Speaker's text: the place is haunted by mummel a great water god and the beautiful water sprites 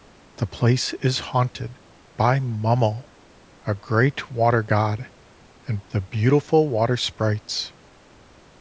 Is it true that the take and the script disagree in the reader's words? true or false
false